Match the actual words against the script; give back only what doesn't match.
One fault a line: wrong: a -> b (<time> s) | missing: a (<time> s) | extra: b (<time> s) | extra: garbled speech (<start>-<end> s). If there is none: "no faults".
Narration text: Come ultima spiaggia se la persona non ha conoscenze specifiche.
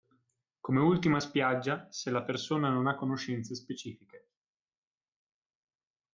no faults